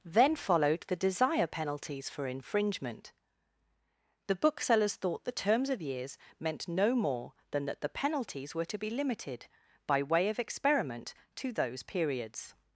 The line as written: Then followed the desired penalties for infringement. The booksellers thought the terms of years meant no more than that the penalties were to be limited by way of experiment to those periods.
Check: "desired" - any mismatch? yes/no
yes